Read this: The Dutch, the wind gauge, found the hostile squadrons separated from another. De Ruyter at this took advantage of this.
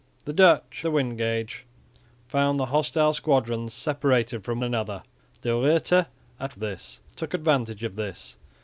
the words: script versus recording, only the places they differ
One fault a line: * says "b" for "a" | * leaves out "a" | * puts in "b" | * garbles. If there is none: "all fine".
all fine